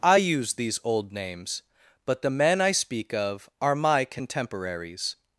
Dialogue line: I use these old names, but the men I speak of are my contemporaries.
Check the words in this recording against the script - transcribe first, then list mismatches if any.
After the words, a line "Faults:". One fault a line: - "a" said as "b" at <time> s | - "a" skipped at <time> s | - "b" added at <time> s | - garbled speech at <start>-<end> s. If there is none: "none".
I use these old names, but the men I speak of are my contemporaries.
Faults:
none